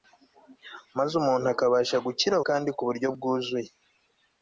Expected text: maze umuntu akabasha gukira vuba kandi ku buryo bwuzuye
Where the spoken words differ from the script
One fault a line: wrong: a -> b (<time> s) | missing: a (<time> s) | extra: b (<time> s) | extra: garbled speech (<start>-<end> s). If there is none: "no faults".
missing: vuba (2.4 s)